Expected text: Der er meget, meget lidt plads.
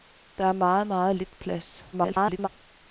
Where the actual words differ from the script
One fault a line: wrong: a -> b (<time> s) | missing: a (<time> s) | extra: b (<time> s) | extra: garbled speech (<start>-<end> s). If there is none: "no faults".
extra: garbled speech (1.9-2.5 s)